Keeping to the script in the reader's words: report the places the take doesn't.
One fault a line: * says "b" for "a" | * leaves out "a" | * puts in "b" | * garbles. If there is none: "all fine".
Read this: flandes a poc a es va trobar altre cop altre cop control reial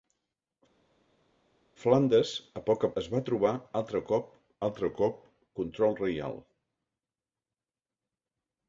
all fine